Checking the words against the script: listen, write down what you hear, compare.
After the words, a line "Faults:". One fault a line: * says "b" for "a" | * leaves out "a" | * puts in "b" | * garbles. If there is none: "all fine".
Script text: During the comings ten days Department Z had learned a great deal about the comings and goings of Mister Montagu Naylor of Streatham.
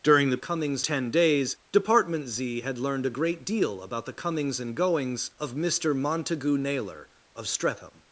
During the comings ten days Department Z had learned a great deal about the comings and goings of Mister Montagu Naylor of Streatham.
Faults:
all fine